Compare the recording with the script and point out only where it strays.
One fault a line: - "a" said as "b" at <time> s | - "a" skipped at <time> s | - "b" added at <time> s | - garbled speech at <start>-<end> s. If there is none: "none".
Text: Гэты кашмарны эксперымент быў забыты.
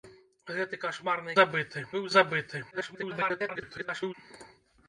- "эксперымент" said as "забыты" at 1.4 s
- garbled speech at 2.7-4.1 s